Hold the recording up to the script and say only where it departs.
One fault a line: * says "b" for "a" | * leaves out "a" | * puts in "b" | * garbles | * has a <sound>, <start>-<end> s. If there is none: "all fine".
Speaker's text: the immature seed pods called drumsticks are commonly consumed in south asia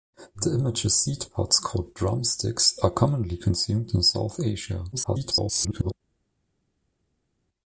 * garbles